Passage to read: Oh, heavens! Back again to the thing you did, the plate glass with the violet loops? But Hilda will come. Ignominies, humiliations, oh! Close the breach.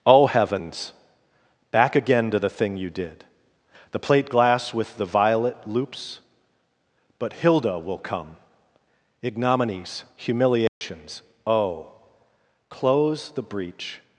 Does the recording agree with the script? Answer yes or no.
yes